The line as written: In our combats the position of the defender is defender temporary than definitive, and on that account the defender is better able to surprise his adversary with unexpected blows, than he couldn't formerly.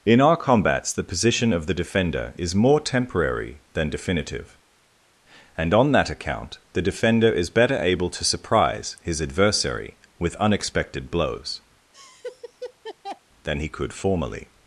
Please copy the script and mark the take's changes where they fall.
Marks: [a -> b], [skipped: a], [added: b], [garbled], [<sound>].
In our combats the position of the defender is [defender -> more] temporary than definitive, and on that account the defender is better able to surprise his adversary with unexpected blows, [laugh] than he [couldn't -> could] formerly.